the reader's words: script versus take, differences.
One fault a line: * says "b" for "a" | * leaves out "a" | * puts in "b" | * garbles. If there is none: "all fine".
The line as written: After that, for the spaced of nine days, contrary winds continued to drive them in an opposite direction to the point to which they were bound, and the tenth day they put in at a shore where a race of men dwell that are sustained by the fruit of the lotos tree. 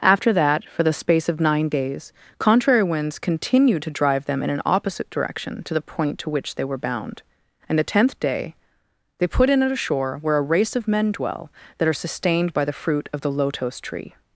* says "space" for "spaced"